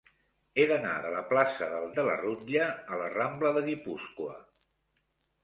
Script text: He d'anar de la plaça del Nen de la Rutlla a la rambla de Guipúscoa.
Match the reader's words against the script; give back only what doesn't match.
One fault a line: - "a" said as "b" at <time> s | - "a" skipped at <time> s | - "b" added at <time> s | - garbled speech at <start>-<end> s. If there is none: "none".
- "Nen" skipped at 1.9 s